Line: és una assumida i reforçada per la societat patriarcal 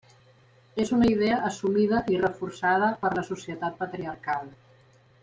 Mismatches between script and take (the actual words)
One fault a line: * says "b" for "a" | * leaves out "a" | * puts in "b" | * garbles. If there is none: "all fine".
* puts in "idea"